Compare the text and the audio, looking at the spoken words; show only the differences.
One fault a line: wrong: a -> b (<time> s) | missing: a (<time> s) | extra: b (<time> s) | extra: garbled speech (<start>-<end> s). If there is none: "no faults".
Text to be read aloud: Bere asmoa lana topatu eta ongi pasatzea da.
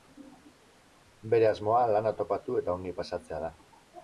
no faults